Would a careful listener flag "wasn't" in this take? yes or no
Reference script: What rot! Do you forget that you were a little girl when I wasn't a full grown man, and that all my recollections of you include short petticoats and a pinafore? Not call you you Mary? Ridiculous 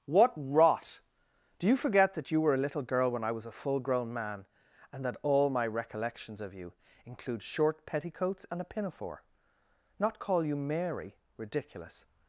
yes